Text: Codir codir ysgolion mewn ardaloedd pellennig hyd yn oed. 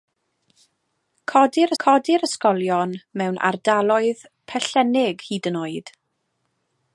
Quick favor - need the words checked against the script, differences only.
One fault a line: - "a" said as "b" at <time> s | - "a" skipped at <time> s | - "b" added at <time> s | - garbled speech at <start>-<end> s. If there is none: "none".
none